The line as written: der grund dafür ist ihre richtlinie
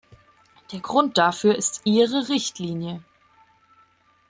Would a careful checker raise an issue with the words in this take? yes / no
no